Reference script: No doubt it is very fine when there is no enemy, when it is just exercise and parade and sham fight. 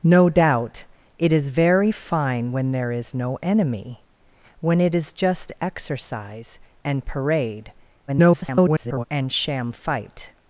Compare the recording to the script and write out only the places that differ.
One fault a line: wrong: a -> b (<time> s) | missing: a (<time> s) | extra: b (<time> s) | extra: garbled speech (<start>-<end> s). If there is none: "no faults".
extra: garbled speech (8.1-9.0 s)